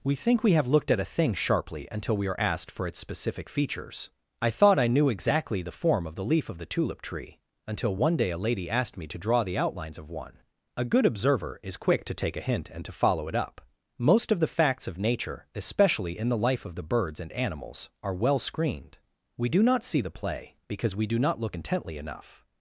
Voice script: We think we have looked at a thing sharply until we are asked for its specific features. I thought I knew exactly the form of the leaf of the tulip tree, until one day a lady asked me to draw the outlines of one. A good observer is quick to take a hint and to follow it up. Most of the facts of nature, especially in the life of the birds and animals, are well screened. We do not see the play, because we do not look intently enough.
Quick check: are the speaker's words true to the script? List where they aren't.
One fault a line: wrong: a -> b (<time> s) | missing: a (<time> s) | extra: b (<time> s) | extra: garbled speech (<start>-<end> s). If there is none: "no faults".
no faults